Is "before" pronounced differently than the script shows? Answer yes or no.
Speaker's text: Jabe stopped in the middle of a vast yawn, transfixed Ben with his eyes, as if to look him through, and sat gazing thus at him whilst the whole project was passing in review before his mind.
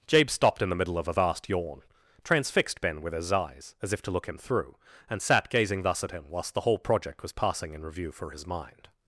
yes